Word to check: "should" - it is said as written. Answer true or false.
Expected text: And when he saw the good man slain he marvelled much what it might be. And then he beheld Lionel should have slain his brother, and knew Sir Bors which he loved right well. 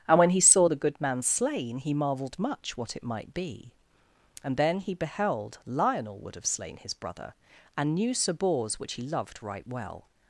false